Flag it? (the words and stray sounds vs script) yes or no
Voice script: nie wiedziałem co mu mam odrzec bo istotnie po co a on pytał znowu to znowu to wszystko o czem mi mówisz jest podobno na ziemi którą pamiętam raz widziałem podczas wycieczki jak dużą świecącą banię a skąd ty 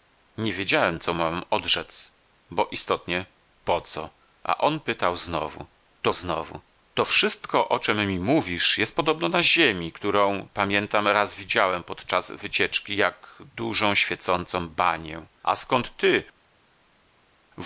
no